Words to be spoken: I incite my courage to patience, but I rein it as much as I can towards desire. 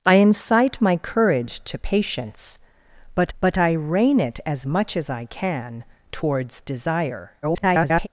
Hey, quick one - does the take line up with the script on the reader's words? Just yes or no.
no